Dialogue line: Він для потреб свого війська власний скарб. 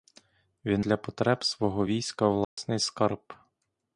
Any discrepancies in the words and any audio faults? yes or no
yes